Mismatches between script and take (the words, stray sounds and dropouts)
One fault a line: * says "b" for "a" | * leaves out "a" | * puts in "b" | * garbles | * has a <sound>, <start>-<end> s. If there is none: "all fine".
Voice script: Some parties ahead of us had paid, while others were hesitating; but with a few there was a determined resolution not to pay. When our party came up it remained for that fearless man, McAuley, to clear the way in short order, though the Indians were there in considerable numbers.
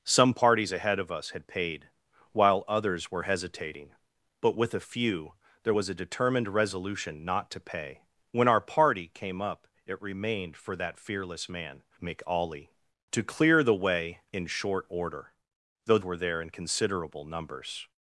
* leaves out "the Indians"